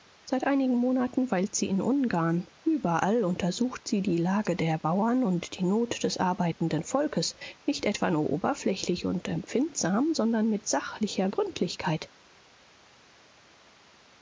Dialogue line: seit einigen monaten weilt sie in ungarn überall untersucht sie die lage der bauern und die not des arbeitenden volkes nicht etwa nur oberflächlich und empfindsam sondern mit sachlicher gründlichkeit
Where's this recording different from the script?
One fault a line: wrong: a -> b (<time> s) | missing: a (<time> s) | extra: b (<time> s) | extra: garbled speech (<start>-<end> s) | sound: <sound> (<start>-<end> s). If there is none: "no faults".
no faults